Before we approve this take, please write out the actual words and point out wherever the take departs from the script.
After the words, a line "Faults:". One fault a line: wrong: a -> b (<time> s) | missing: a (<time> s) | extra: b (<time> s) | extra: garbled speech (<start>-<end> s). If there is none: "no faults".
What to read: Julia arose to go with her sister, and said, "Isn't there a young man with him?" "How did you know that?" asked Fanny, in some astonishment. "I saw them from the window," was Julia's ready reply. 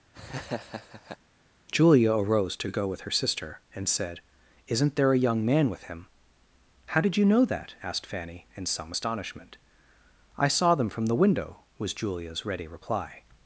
Julia arose to go with her sister, and said, "Isn't there a young man with him?" "How did you know that?" asked Fanny, in some astonishment. "I saw them from the window," was Julia's ready reply.
Faults:
no faults